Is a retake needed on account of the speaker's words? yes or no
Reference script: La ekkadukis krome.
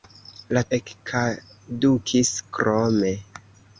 no